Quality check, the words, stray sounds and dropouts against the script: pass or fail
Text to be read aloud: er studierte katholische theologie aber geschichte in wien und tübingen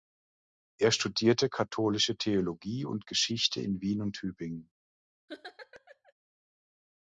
fail